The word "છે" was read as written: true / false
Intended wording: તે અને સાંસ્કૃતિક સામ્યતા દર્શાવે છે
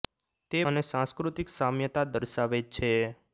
true